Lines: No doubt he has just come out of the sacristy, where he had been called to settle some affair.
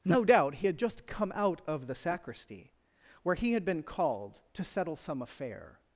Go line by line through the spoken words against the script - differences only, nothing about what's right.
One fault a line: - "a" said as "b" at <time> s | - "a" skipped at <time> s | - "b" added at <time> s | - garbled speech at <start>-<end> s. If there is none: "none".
- "has" said as "had" at 0.6 s